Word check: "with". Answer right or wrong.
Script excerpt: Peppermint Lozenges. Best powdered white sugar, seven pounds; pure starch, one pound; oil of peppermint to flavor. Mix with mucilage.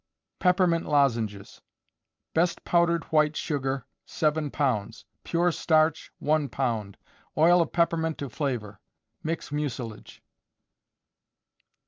wrong